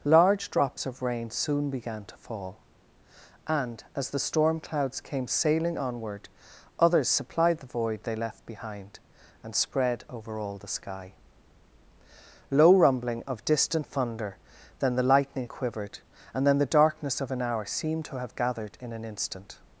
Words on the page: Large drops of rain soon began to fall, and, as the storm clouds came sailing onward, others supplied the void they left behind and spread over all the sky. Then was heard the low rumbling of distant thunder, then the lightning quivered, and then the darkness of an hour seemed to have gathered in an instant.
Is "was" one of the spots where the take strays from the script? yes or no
yes